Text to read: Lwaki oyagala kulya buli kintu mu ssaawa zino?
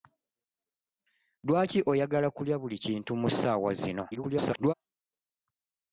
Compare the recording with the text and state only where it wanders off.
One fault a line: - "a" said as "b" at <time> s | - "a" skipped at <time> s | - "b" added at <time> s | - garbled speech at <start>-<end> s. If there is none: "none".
- garbled speech at 4.1-4.7 s